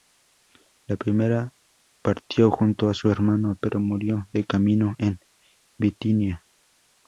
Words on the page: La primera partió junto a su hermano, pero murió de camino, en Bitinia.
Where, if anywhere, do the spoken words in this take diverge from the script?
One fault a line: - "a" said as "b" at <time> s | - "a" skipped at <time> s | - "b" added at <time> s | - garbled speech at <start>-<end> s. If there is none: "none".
none